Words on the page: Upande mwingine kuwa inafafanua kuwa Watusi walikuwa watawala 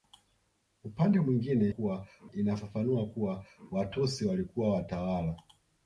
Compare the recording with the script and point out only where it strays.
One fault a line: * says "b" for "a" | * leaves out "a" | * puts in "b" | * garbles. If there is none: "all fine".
all fine